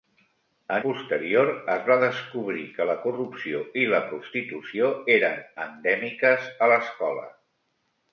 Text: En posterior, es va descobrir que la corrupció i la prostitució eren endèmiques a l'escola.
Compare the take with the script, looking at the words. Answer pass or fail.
pass